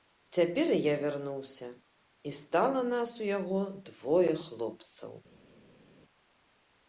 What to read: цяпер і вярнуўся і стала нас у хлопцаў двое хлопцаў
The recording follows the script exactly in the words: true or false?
false